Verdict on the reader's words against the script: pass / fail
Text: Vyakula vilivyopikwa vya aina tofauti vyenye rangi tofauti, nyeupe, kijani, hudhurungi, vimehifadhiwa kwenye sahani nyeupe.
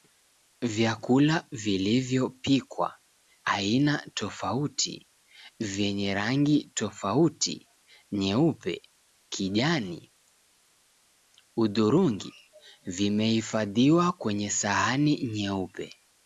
fail